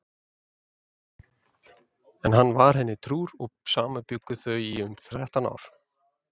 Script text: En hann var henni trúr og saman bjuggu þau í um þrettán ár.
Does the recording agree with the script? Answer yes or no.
yes